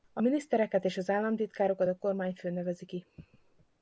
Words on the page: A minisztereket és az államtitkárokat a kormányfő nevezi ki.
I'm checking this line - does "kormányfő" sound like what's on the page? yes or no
yes